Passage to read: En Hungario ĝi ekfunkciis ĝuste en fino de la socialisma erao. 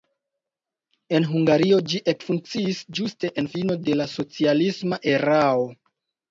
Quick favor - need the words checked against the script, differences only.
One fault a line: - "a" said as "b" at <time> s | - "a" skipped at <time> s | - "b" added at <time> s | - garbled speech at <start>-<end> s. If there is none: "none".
none